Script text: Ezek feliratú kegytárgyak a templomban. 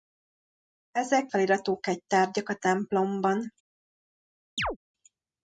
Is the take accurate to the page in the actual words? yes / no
yes